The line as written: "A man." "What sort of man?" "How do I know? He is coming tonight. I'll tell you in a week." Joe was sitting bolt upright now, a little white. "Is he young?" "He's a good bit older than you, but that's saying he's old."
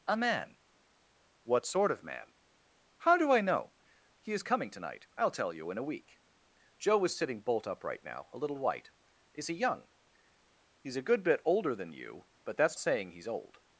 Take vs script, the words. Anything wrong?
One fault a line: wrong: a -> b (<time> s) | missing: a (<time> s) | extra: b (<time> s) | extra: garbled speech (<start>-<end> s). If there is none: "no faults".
no faults